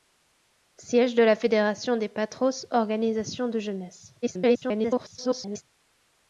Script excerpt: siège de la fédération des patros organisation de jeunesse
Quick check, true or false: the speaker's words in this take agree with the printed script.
false